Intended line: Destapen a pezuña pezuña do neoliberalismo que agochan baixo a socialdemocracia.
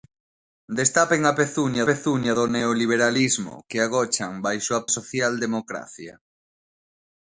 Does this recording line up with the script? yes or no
yes